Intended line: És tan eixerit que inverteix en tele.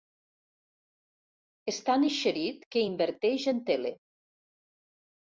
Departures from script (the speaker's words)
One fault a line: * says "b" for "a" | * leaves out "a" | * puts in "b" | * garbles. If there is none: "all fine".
all fine